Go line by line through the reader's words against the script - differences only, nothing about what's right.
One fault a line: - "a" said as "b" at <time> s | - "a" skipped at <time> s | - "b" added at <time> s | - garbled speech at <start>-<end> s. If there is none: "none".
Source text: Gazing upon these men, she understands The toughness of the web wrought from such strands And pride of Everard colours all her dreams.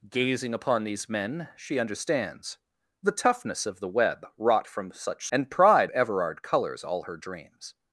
- "strands" skipped at 5.3 s
- "of" skipped at 5.9 s